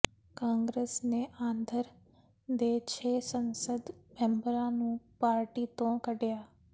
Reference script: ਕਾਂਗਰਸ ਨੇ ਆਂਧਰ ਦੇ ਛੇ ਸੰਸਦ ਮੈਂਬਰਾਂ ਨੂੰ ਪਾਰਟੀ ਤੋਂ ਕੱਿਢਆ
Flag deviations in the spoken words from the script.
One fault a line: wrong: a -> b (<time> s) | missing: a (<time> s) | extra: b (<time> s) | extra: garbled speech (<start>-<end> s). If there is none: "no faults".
no faults